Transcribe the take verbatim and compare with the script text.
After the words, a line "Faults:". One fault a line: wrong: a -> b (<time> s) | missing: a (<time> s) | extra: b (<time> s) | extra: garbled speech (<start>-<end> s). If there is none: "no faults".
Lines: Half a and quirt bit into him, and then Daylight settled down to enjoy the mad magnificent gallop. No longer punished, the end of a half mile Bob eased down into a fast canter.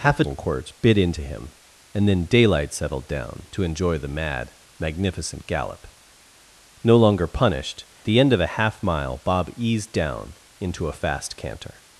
Half a and quirt bit into him, and then Daylight settled down to enjoy the mad magnificent gallop. No longer punished, the end of a half mile Bob eased down into a fast canter.
Faults:
no faults